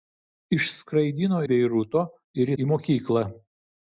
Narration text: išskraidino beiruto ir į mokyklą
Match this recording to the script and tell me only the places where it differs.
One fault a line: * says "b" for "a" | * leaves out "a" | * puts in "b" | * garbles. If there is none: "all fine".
all fine